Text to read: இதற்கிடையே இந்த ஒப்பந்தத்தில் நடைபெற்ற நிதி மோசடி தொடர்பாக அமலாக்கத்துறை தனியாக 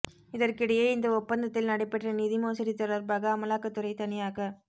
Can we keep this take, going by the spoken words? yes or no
yes